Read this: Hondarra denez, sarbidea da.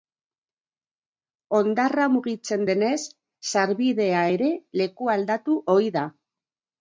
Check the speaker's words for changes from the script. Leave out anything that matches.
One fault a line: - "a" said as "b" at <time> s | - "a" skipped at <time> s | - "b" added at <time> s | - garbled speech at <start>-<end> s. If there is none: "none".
- "mugitzen" added at 2.1 s
- "ere lekualdatu ohi" added at 4.4 s